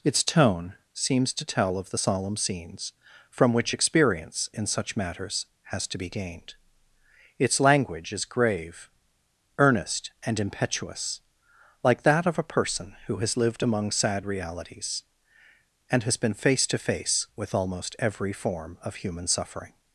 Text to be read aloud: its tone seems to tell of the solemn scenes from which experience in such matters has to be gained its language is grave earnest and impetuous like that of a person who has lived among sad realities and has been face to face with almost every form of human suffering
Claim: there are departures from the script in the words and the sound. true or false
false